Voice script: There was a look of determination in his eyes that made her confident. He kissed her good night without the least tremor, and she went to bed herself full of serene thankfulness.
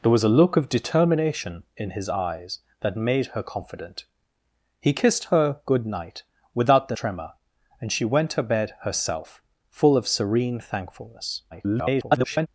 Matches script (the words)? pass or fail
fail